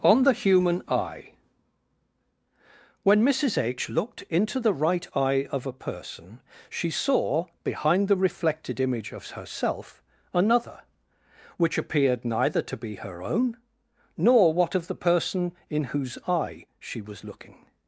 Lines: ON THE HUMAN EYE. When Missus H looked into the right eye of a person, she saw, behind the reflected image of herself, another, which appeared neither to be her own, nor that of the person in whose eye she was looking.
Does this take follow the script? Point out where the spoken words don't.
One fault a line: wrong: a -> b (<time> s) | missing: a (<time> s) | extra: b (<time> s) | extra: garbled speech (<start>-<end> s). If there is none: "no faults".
wrong: that -> what (14.5 s)